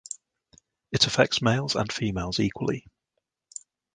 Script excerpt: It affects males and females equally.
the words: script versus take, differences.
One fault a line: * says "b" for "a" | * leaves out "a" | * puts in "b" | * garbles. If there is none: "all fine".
all fine